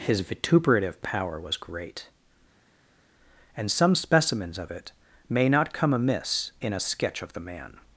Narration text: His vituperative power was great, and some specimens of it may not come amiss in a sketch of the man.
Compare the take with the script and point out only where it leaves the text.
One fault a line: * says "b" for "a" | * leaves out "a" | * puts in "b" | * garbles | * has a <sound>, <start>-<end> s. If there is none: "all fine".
all fine